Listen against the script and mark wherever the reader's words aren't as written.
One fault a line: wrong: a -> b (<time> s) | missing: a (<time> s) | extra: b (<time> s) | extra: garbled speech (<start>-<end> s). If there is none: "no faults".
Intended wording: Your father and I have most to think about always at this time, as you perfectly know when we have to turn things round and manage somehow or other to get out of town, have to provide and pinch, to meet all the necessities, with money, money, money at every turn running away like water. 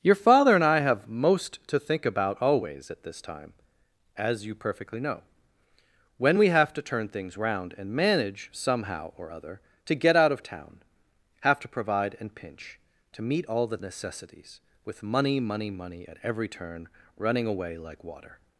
no faults